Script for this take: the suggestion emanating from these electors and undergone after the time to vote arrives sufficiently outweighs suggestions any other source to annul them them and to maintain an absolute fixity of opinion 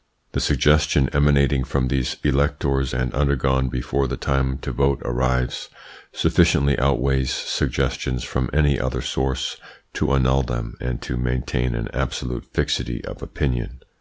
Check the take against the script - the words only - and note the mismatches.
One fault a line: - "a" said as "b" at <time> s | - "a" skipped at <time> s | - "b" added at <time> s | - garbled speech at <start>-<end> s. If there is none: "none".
- "after" said as "before" at 3.7 s
- "from" added at 8.2 s
- "them" skipped at 10.8 s